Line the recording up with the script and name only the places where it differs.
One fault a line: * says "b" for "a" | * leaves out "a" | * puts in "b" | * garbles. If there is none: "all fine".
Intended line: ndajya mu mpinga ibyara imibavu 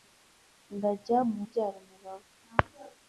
* leaves out "mpinga"